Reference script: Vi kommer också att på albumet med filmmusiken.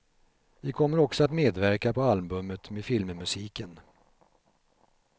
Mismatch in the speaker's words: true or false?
true